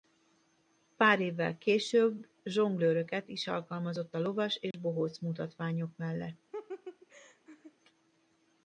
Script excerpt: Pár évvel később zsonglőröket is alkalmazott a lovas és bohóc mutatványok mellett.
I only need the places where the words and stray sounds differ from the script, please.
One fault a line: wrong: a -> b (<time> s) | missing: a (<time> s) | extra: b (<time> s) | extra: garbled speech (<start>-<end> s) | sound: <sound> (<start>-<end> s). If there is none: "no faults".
sound: dropout (4.7-4.7 s)
sound: laugh (6.5-7.7 s)